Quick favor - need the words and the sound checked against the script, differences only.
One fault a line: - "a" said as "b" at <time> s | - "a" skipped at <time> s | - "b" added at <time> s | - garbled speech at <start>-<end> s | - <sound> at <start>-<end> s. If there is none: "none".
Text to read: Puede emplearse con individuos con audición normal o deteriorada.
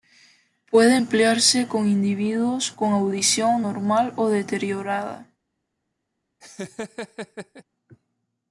- laugh at 6.4-7.6 s